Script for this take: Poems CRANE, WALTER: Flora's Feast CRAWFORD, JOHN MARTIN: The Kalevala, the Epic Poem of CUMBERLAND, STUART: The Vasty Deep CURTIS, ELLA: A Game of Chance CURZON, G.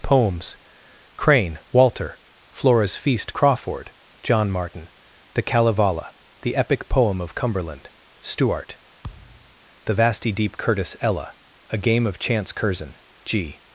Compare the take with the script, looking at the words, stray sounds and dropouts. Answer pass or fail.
fail